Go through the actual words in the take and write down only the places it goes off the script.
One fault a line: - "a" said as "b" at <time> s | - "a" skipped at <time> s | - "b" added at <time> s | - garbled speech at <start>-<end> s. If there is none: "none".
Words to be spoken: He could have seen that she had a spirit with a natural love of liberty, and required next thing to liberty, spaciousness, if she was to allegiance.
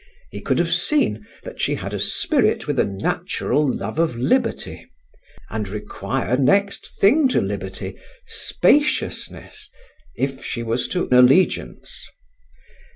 none